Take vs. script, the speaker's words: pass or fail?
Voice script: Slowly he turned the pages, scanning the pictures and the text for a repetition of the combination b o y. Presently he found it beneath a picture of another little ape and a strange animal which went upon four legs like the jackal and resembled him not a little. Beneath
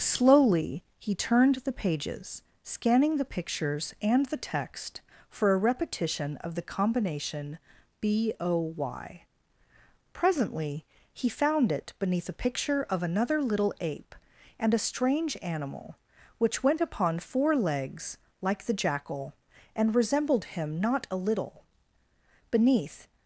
pass